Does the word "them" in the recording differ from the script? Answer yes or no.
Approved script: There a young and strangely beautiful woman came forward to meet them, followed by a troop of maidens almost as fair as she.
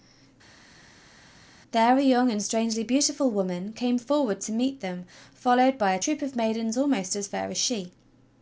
no